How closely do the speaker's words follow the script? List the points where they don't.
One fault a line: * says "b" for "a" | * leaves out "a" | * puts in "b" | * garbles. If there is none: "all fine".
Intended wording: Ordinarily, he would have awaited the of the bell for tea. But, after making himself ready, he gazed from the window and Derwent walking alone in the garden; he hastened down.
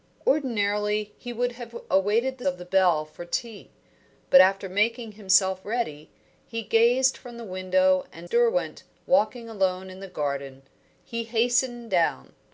all fine